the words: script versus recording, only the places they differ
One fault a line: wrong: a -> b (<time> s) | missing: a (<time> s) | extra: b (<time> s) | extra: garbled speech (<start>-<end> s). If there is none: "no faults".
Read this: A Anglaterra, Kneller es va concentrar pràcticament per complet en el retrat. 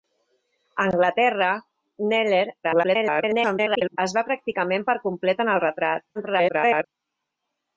extra: garbled speech (2.6-4.0 s)
missing: concentrar (4.2 s)
extra: garbled speech (6.1-6.8 s)